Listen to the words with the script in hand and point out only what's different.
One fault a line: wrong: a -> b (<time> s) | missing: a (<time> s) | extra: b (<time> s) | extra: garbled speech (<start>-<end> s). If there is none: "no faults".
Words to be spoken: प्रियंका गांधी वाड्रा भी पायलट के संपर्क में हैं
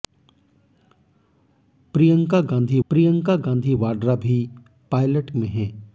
extra: प्रियंका गांधी (2.9 s)
missing: के संपर्क (5.3 s)